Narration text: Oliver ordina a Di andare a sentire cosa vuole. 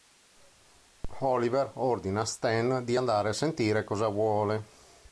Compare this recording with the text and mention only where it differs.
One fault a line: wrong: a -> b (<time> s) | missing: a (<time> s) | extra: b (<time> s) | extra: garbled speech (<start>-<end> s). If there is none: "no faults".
extra: Stan (2.2 s)